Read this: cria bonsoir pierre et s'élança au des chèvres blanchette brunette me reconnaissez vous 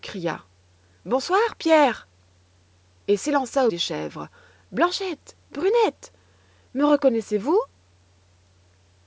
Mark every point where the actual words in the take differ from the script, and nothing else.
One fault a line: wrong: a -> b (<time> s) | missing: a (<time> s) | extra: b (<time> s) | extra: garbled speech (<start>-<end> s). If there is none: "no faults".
no faults